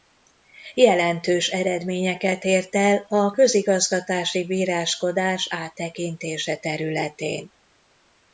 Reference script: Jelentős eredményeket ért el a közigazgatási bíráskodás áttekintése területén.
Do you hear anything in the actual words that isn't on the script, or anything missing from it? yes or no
no